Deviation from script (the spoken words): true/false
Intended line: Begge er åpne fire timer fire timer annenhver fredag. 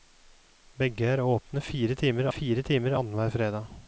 false